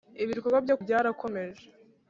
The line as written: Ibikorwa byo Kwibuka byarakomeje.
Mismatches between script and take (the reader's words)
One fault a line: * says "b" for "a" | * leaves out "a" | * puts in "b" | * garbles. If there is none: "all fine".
* leaves out "Kwibuka"